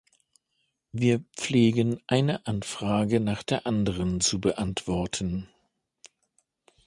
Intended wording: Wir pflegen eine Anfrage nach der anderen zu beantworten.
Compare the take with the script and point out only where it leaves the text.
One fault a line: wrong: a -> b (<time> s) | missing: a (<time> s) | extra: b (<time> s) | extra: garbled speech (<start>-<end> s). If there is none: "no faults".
no faults